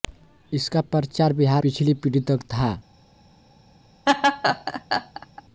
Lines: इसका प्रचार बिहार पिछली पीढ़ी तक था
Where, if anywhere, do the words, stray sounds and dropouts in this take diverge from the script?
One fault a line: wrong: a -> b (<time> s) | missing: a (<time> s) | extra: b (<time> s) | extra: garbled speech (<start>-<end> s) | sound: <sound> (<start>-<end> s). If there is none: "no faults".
sound: laugh (4.1-5.4 s)